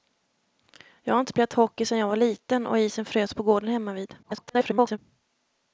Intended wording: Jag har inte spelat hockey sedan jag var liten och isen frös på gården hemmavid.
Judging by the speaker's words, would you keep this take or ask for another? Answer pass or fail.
fail